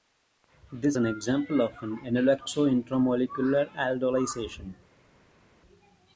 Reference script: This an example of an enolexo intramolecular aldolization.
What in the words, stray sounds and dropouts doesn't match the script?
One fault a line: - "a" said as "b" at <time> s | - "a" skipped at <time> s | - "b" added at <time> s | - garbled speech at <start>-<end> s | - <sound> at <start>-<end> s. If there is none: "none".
none